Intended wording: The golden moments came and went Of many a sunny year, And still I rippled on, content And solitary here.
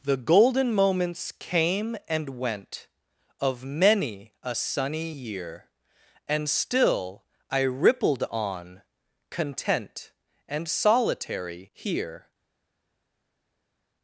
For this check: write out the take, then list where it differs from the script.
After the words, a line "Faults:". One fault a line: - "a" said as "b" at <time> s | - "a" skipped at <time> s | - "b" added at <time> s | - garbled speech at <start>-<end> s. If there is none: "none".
The golden moments came and went Of many a sunny year, And still I rippled on, content And solitary here.
Faults:
none